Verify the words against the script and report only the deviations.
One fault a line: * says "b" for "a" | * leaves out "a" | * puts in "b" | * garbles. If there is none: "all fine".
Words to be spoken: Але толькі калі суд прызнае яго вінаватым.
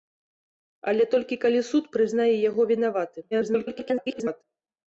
* garbles